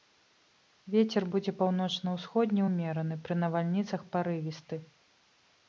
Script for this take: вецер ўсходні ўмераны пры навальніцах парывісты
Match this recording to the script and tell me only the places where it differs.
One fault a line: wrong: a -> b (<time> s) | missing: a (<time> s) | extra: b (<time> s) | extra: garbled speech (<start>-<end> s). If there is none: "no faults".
extra: будзе паўночна (1.3 s)